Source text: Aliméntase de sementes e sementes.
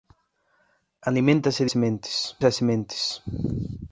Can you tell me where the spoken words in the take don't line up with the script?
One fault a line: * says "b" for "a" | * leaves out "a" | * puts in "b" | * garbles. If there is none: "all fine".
all fine